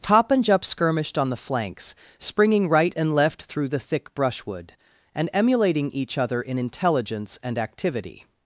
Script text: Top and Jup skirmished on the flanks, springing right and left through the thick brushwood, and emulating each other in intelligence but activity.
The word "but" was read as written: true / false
false